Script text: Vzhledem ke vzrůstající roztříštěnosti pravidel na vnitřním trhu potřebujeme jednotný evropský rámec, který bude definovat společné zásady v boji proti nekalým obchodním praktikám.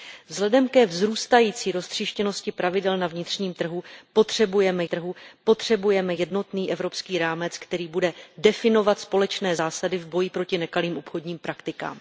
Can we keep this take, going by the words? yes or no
no